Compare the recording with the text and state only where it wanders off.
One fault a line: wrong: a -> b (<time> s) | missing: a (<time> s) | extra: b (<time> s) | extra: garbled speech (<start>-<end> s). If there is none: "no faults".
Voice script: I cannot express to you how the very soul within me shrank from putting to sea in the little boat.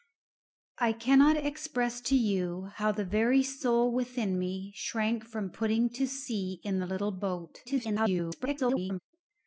extra: garbled speech (7.6-9.0 s)